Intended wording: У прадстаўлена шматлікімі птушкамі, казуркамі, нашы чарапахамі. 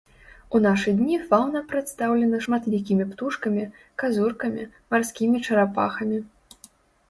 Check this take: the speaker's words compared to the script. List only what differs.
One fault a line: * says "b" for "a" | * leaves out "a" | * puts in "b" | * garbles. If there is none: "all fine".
* puts in "нашы дні фаўна"
* says "марскімі" for "нашы"